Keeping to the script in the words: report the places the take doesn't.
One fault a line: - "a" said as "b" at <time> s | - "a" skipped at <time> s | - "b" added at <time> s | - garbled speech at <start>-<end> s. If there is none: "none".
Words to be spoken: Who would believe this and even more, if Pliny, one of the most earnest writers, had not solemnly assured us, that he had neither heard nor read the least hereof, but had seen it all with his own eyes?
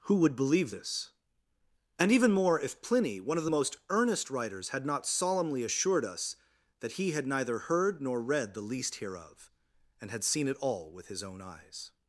- "but" said as "and" at 10.0 s